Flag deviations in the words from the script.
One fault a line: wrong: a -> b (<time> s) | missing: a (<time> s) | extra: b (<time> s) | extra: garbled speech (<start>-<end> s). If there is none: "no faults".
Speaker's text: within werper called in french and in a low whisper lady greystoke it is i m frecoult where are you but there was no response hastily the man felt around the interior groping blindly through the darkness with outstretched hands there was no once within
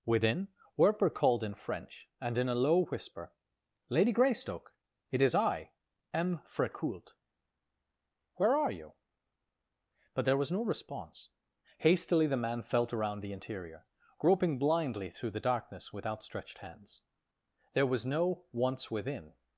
no faults